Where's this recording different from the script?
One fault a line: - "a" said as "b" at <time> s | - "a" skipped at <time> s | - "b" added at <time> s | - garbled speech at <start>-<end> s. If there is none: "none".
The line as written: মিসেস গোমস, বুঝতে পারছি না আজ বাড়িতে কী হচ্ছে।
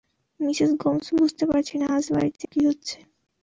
none